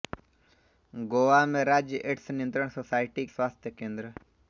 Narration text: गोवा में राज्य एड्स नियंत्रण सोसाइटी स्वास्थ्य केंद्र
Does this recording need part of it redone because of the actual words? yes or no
no